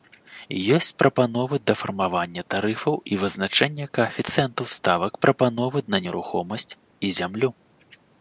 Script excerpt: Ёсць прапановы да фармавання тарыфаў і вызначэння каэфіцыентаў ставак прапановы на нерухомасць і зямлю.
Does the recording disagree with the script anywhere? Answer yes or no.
no